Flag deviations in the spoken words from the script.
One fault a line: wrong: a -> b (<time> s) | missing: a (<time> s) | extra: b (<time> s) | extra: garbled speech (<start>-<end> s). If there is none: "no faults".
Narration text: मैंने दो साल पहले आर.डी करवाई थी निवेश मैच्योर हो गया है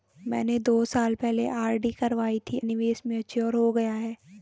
no faults